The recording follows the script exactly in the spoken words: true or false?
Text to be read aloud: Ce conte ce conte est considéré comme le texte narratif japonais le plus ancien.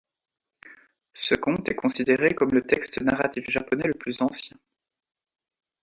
false